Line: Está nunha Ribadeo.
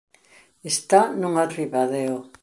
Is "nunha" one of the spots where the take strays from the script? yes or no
no